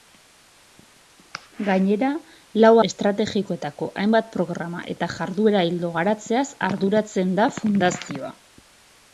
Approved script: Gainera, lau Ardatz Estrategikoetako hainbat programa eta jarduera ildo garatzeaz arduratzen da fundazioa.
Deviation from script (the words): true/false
true